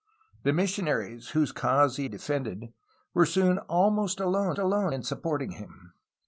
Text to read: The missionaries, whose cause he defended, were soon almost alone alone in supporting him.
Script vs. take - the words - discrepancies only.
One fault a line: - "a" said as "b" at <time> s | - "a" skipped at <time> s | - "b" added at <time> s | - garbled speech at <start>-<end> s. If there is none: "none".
none